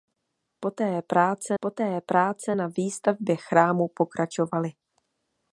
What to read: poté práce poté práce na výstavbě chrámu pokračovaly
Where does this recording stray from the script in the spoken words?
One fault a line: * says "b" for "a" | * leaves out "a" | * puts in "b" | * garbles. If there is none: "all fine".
all fine